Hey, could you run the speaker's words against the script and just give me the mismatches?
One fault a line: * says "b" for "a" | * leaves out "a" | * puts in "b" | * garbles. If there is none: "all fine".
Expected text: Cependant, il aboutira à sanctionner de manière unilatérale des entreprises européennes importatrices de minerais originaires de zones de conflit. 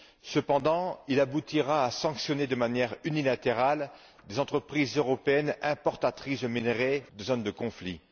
* leaves out "originaires"